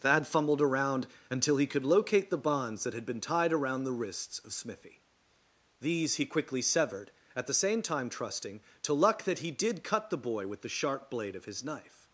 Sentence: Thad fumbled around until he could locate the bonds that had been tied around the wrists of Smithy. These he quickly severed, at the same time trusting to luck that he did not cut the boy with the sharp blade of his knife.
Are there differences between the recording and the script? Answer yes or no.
yes